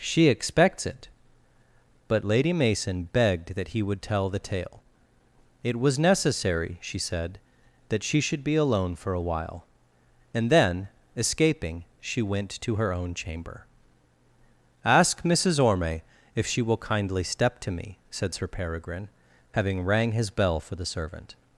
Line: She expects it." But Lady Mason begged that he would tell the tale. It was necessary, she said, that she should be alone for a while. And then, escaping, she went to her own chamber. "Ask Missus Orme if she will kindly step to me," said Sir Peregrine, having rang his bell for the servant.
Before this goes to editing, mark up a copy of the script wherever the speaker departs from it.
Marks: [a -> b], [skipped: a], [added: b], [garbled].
She expects it." But Lady Mason begged that he would tell the tale. It was necessary, she said, that she should be alone for a while. And then, escaping, she went to her own chamber. "Ask Missus Orme if she will kindly step to me," said Sir Peregrine, having rang his bell for the servant.